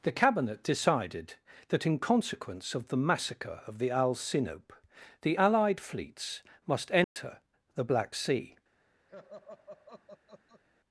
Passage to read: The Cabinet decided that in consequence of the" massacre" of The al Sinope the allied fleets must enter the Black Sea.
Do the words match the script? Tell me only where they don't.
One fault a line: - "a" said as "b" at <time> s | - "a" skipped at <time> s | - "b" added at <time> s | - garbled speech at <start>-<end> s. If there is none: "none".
none